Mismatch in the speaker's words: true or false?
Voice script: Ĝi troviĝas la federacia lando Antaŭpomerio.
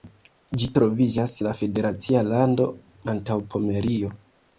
false